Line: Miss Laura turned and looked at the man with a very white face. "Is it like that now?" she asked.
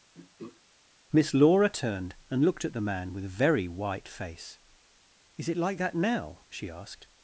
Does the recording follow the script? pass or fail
pass